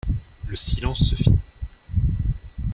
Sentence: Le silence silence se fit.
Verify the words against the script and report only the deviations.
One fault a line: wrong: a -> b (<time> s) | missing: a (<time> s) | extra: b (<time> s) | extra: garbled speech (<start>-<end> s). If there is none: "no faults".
missing: silence (1.1 s)